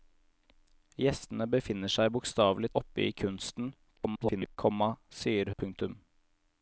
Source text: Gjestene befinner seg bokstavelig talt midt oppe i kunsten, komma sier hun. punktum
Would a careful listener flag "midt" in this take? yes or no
yes